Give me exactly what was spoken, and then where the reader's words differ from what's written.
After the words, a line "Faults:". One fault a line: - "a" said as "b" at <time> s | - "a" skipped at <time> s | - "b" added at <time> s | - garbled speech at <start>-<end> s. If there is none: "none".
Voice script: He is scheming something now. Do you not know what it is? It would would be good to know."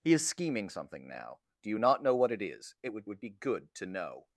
He is scheming something now. Do you not know what it is? It would would be good to know."
Faults:
none